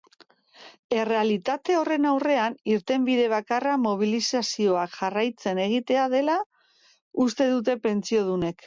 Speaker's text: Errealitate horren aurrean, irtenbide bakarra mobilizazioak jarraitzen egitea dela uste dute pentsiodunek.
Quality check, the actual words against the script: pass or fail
pass